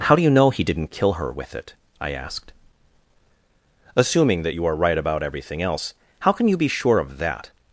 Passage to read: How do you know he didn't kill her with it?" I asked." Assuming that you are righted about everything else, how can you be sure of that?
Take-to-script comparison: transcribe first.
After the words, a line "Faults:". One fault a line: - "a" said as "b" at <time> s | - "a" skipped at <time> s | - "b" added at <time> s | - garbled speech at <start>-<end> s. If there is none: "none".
How do you know he didn't kill her with it?" I asked." Assuming that you are right about everything else, how can you be sure of that?
Faults:
- "righted" said as "right" at 4.8 s